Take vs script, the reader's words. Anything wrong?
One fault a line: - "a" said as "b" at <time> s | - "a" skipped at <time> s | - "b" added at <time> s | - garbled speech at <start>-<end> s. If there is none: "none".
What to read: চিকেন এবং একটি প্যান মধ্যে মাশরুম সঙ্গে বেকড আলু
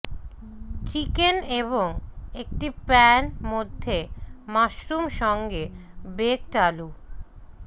none